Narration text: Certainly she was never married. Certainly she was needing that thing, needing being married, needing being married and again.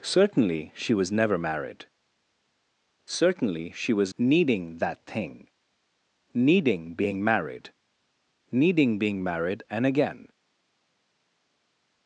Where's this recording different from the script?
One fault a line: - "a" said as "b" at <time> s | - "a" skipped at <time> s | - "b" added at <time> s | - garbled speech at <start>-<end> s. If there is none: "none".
none